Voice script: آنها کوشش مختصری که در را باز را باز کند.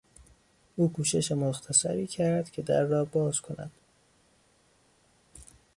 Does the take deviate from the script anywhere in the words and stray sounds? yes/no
yes